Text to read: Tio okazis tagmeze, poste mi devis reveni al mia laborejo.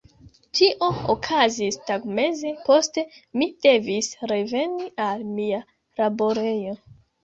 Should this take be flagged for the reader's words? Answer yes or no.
no